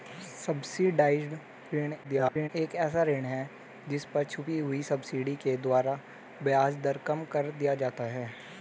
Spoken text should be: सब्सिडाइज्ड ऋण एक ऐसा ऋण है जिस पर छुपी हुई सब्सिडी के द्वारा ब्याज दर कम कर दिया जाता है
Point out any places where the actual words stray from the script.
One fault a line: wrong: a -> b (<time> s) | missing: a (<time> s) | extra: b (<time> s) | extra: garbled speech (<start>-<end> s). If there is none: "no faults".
extra: garbled speech (2.0-2.5 s)